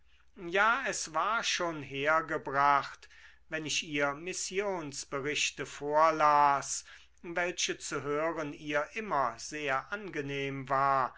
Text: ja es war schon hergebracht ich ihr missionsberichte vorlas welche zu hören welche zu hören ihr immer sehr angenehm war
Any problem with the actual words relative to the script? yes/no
yes